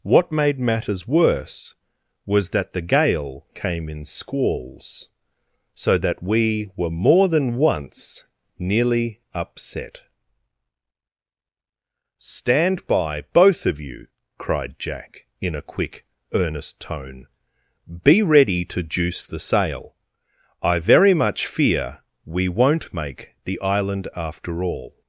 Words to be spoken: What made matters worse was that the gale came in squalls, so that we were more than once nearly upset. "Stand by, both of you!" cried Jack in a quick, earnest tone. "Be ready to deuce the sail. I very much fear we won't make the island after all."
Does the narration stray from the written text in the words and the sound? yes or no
yes